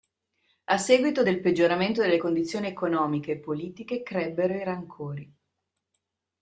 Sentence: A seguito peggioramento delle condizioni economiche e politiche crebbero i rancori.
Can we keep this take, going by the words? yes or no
no